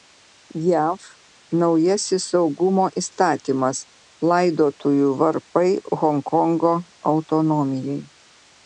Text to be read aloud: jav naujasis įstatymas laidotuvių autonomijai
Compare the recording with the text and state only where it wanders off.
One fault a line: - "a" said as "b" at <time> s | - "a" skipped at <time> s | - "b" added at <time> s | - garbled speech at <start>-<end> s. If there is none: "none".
- "saugumo" added at 2.3 s
- "varpai honkongo" added at 5.3 s